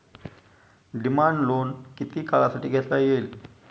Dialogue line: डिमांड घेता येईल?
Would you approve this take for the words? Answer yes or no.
no